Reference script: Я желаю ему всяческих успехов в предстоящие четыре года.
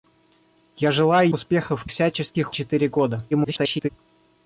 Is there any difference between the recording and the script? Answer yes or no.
yes